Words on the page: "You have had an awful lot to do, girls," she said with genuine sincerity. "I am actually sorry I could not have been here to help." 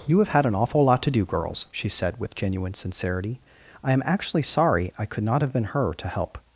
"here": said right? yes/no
no